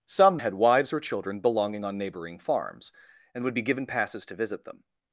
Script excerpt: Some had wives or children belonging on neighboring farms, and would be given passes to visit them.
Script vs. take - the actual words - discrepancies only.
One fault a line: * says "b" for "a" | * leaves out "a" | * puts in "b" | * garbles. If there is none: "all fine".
all fine